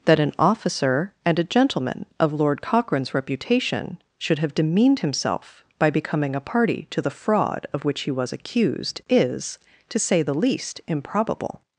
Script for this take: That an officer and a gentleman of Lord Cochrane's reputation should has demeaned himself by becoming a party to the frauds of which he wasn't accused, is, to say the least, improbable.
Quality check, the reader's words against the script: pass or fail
fail